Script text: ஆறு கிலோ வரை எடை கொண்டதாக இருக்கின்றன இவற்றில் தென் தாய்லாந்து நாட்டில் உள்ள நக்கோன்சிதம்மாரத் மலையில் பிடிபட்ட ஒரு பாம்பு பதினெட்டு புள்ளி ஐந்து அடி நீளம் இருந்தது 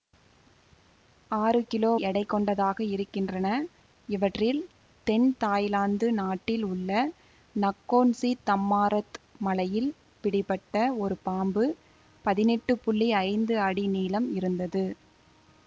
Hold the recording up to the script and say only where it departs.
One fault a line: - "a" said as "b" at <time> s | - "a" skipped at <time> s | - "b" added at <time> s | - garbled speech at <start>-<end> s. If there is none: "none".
- "வரை" skipped at 1.9 s